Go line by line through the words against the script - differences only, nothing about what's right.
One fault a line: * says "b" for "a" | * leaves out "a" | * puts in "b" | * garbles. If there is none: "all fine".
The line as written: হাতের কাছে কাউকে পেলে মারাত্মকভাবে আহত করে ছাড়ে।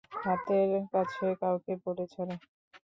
* leaves out "পেলে মারাত্মকভাবে আহত"